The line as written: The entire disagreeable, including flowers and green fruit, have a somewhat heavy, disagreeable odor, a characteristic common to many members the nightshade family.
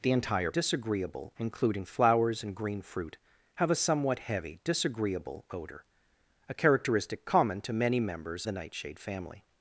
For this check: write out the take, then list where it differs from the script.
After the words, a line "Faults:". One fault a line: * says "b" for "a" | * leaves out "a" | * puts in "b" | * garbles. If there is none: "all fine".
The entire disagreeable, including flowers and green fruit, have a somewhat heavy, disagreeable odor, a characteristic common to many members the nightshade family.
Faults:
all fine